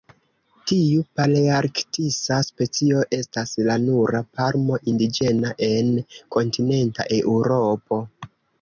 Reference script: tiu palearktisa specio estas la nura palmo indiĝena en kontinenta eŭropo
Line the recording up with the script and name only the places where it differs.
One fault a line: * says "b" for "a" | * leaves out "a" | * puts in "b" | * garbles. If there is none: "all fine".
all fine